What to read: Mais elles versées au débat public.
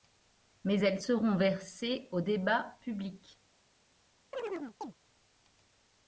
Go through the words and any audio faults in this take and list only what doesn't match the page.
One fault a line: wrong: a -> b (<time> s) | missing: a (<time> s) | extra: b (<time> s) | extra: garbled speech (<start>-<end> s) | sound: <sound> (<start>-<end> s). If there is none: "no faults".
extra: seront (1.0 s)
sound: chirp (4.3-4.9 s)